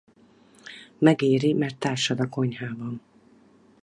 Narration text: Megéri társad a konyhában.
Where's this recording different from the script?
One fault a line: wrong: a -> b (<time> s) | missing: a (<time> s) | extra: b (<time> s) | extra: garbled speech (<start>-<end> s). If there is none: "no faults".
extra: mert (1.5 s)